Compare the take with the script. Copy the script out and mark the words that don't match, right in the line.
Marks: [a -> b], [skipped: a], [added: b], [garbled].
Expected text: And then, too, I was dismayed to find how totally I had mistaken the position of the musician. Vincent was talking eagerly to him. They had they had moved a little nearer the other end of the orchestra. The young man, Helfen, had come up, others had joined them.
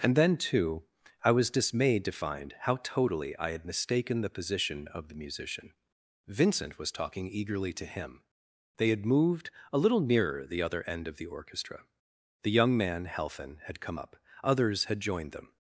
And then, too, I was dismayed to find how totally I had mistaken the position of the musician. Vincent was talking eagerly to him. They had [skipped: they had] moved a little nearer the other end of the orchestra. The young man, Helfen, had come up, others had joined them.